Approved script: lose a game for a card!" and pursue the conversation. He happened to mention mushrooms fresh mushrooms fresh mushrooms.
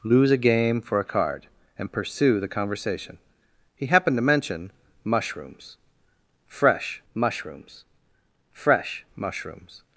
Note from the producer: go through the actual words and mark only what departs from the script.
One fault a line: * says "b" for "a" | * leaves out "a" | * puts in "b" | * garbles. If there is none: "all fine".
all fine